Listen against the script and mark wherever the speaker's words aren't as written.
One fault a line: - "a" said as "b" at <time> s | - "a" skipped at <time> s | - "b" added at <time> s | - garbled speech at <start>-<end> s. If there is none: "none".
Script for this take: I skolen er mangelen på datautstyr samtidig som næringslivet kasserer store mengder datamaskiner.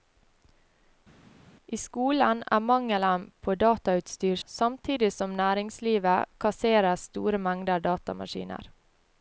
none